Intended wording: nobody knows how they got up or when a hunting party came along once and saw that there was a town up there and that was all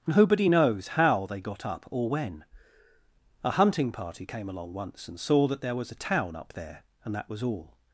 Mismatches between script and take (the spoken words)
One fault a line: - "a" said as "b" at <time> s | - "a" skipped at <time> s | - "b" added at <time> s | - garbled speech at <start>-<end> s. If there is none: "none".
none